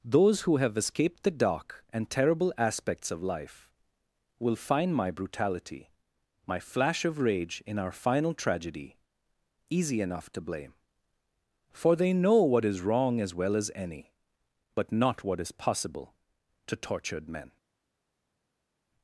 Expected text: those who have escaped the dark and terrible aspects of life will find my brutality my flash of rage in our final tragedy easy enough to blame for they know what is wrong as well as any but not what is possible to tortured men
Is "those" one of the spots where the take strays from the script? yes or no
no